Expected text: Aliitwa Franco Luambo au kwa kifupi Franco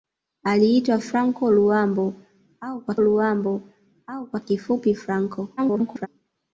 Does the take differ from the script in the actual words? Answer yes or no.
yes